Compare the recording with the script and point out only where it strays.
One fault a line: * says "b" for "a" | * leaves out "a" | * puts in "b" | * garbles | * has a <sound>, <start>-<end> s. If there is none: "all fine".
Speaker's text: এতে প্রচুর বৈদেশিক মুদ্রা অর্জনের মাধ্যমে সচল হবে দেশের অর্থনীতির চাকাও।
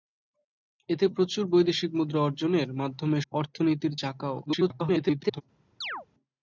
* leaves out "সচল হবে দেশের"
* garbles
* has a chirp, 5.8-6.1 s